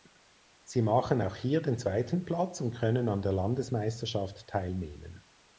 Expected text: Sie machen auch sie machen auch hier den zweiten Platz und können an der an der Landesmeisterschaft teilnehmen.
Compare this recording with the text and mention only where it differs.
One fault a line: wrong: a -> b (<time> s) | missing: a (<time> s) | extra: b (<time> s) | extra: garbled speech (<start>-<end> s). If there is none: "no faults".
missing: sie machen auch (1.3 s)
missing: an der (3.3 s)